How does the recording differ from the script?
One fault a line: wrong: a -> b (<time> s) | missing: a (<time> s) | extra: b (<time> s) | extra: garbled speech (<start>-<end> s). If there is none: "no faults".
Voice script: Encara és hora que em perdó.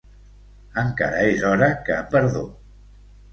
no faults